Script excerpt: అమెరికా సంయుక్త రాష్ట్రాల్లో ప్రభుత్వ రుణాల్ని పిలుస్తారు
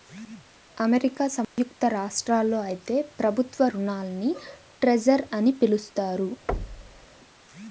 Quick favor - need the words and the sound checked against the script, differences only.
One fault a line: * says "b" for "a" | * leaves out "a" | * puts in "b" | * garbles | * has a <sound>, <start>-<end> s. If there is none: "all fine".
* has a dropout, 1.4-1.6 s
* puts in "అయితే"
* puts in "ట్రెజర్ అని"
* has a thud, 6.5-7.1 s